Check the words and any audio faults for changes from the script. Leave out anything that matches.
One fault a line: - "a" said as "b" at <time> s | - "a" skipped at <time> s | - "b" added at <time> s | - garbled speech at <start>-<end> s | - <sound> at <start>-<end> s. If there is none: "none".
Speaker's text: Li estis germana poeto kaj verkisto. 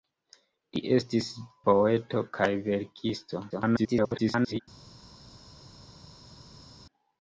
- "germana" skipped at 1.3 s
- garbled speech at 3.5-4.6 s